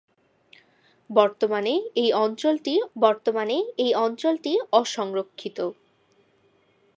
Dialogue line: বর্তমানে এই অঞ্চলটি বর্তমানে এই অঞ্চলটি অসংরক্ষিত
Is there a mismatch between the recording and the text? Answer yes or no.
no